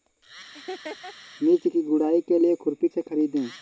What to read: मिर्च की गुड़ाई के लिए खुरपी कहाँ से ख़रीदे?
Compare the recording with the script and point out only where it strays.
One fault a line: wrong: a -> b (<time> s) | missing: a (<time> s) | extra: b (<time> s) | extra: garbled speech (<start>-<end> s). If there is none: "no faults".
missing: कहाँ (2.9 s)